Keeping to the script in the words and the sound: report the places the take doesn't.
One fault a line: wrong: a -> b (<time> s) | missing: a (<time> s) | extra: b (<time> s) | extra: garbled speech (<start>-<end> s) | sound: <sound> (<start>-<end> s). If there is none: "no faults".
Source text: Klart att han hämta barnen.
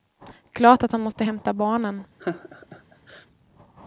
extra: måste (1.0 s)
sound: laugh (2.2-3.3 s)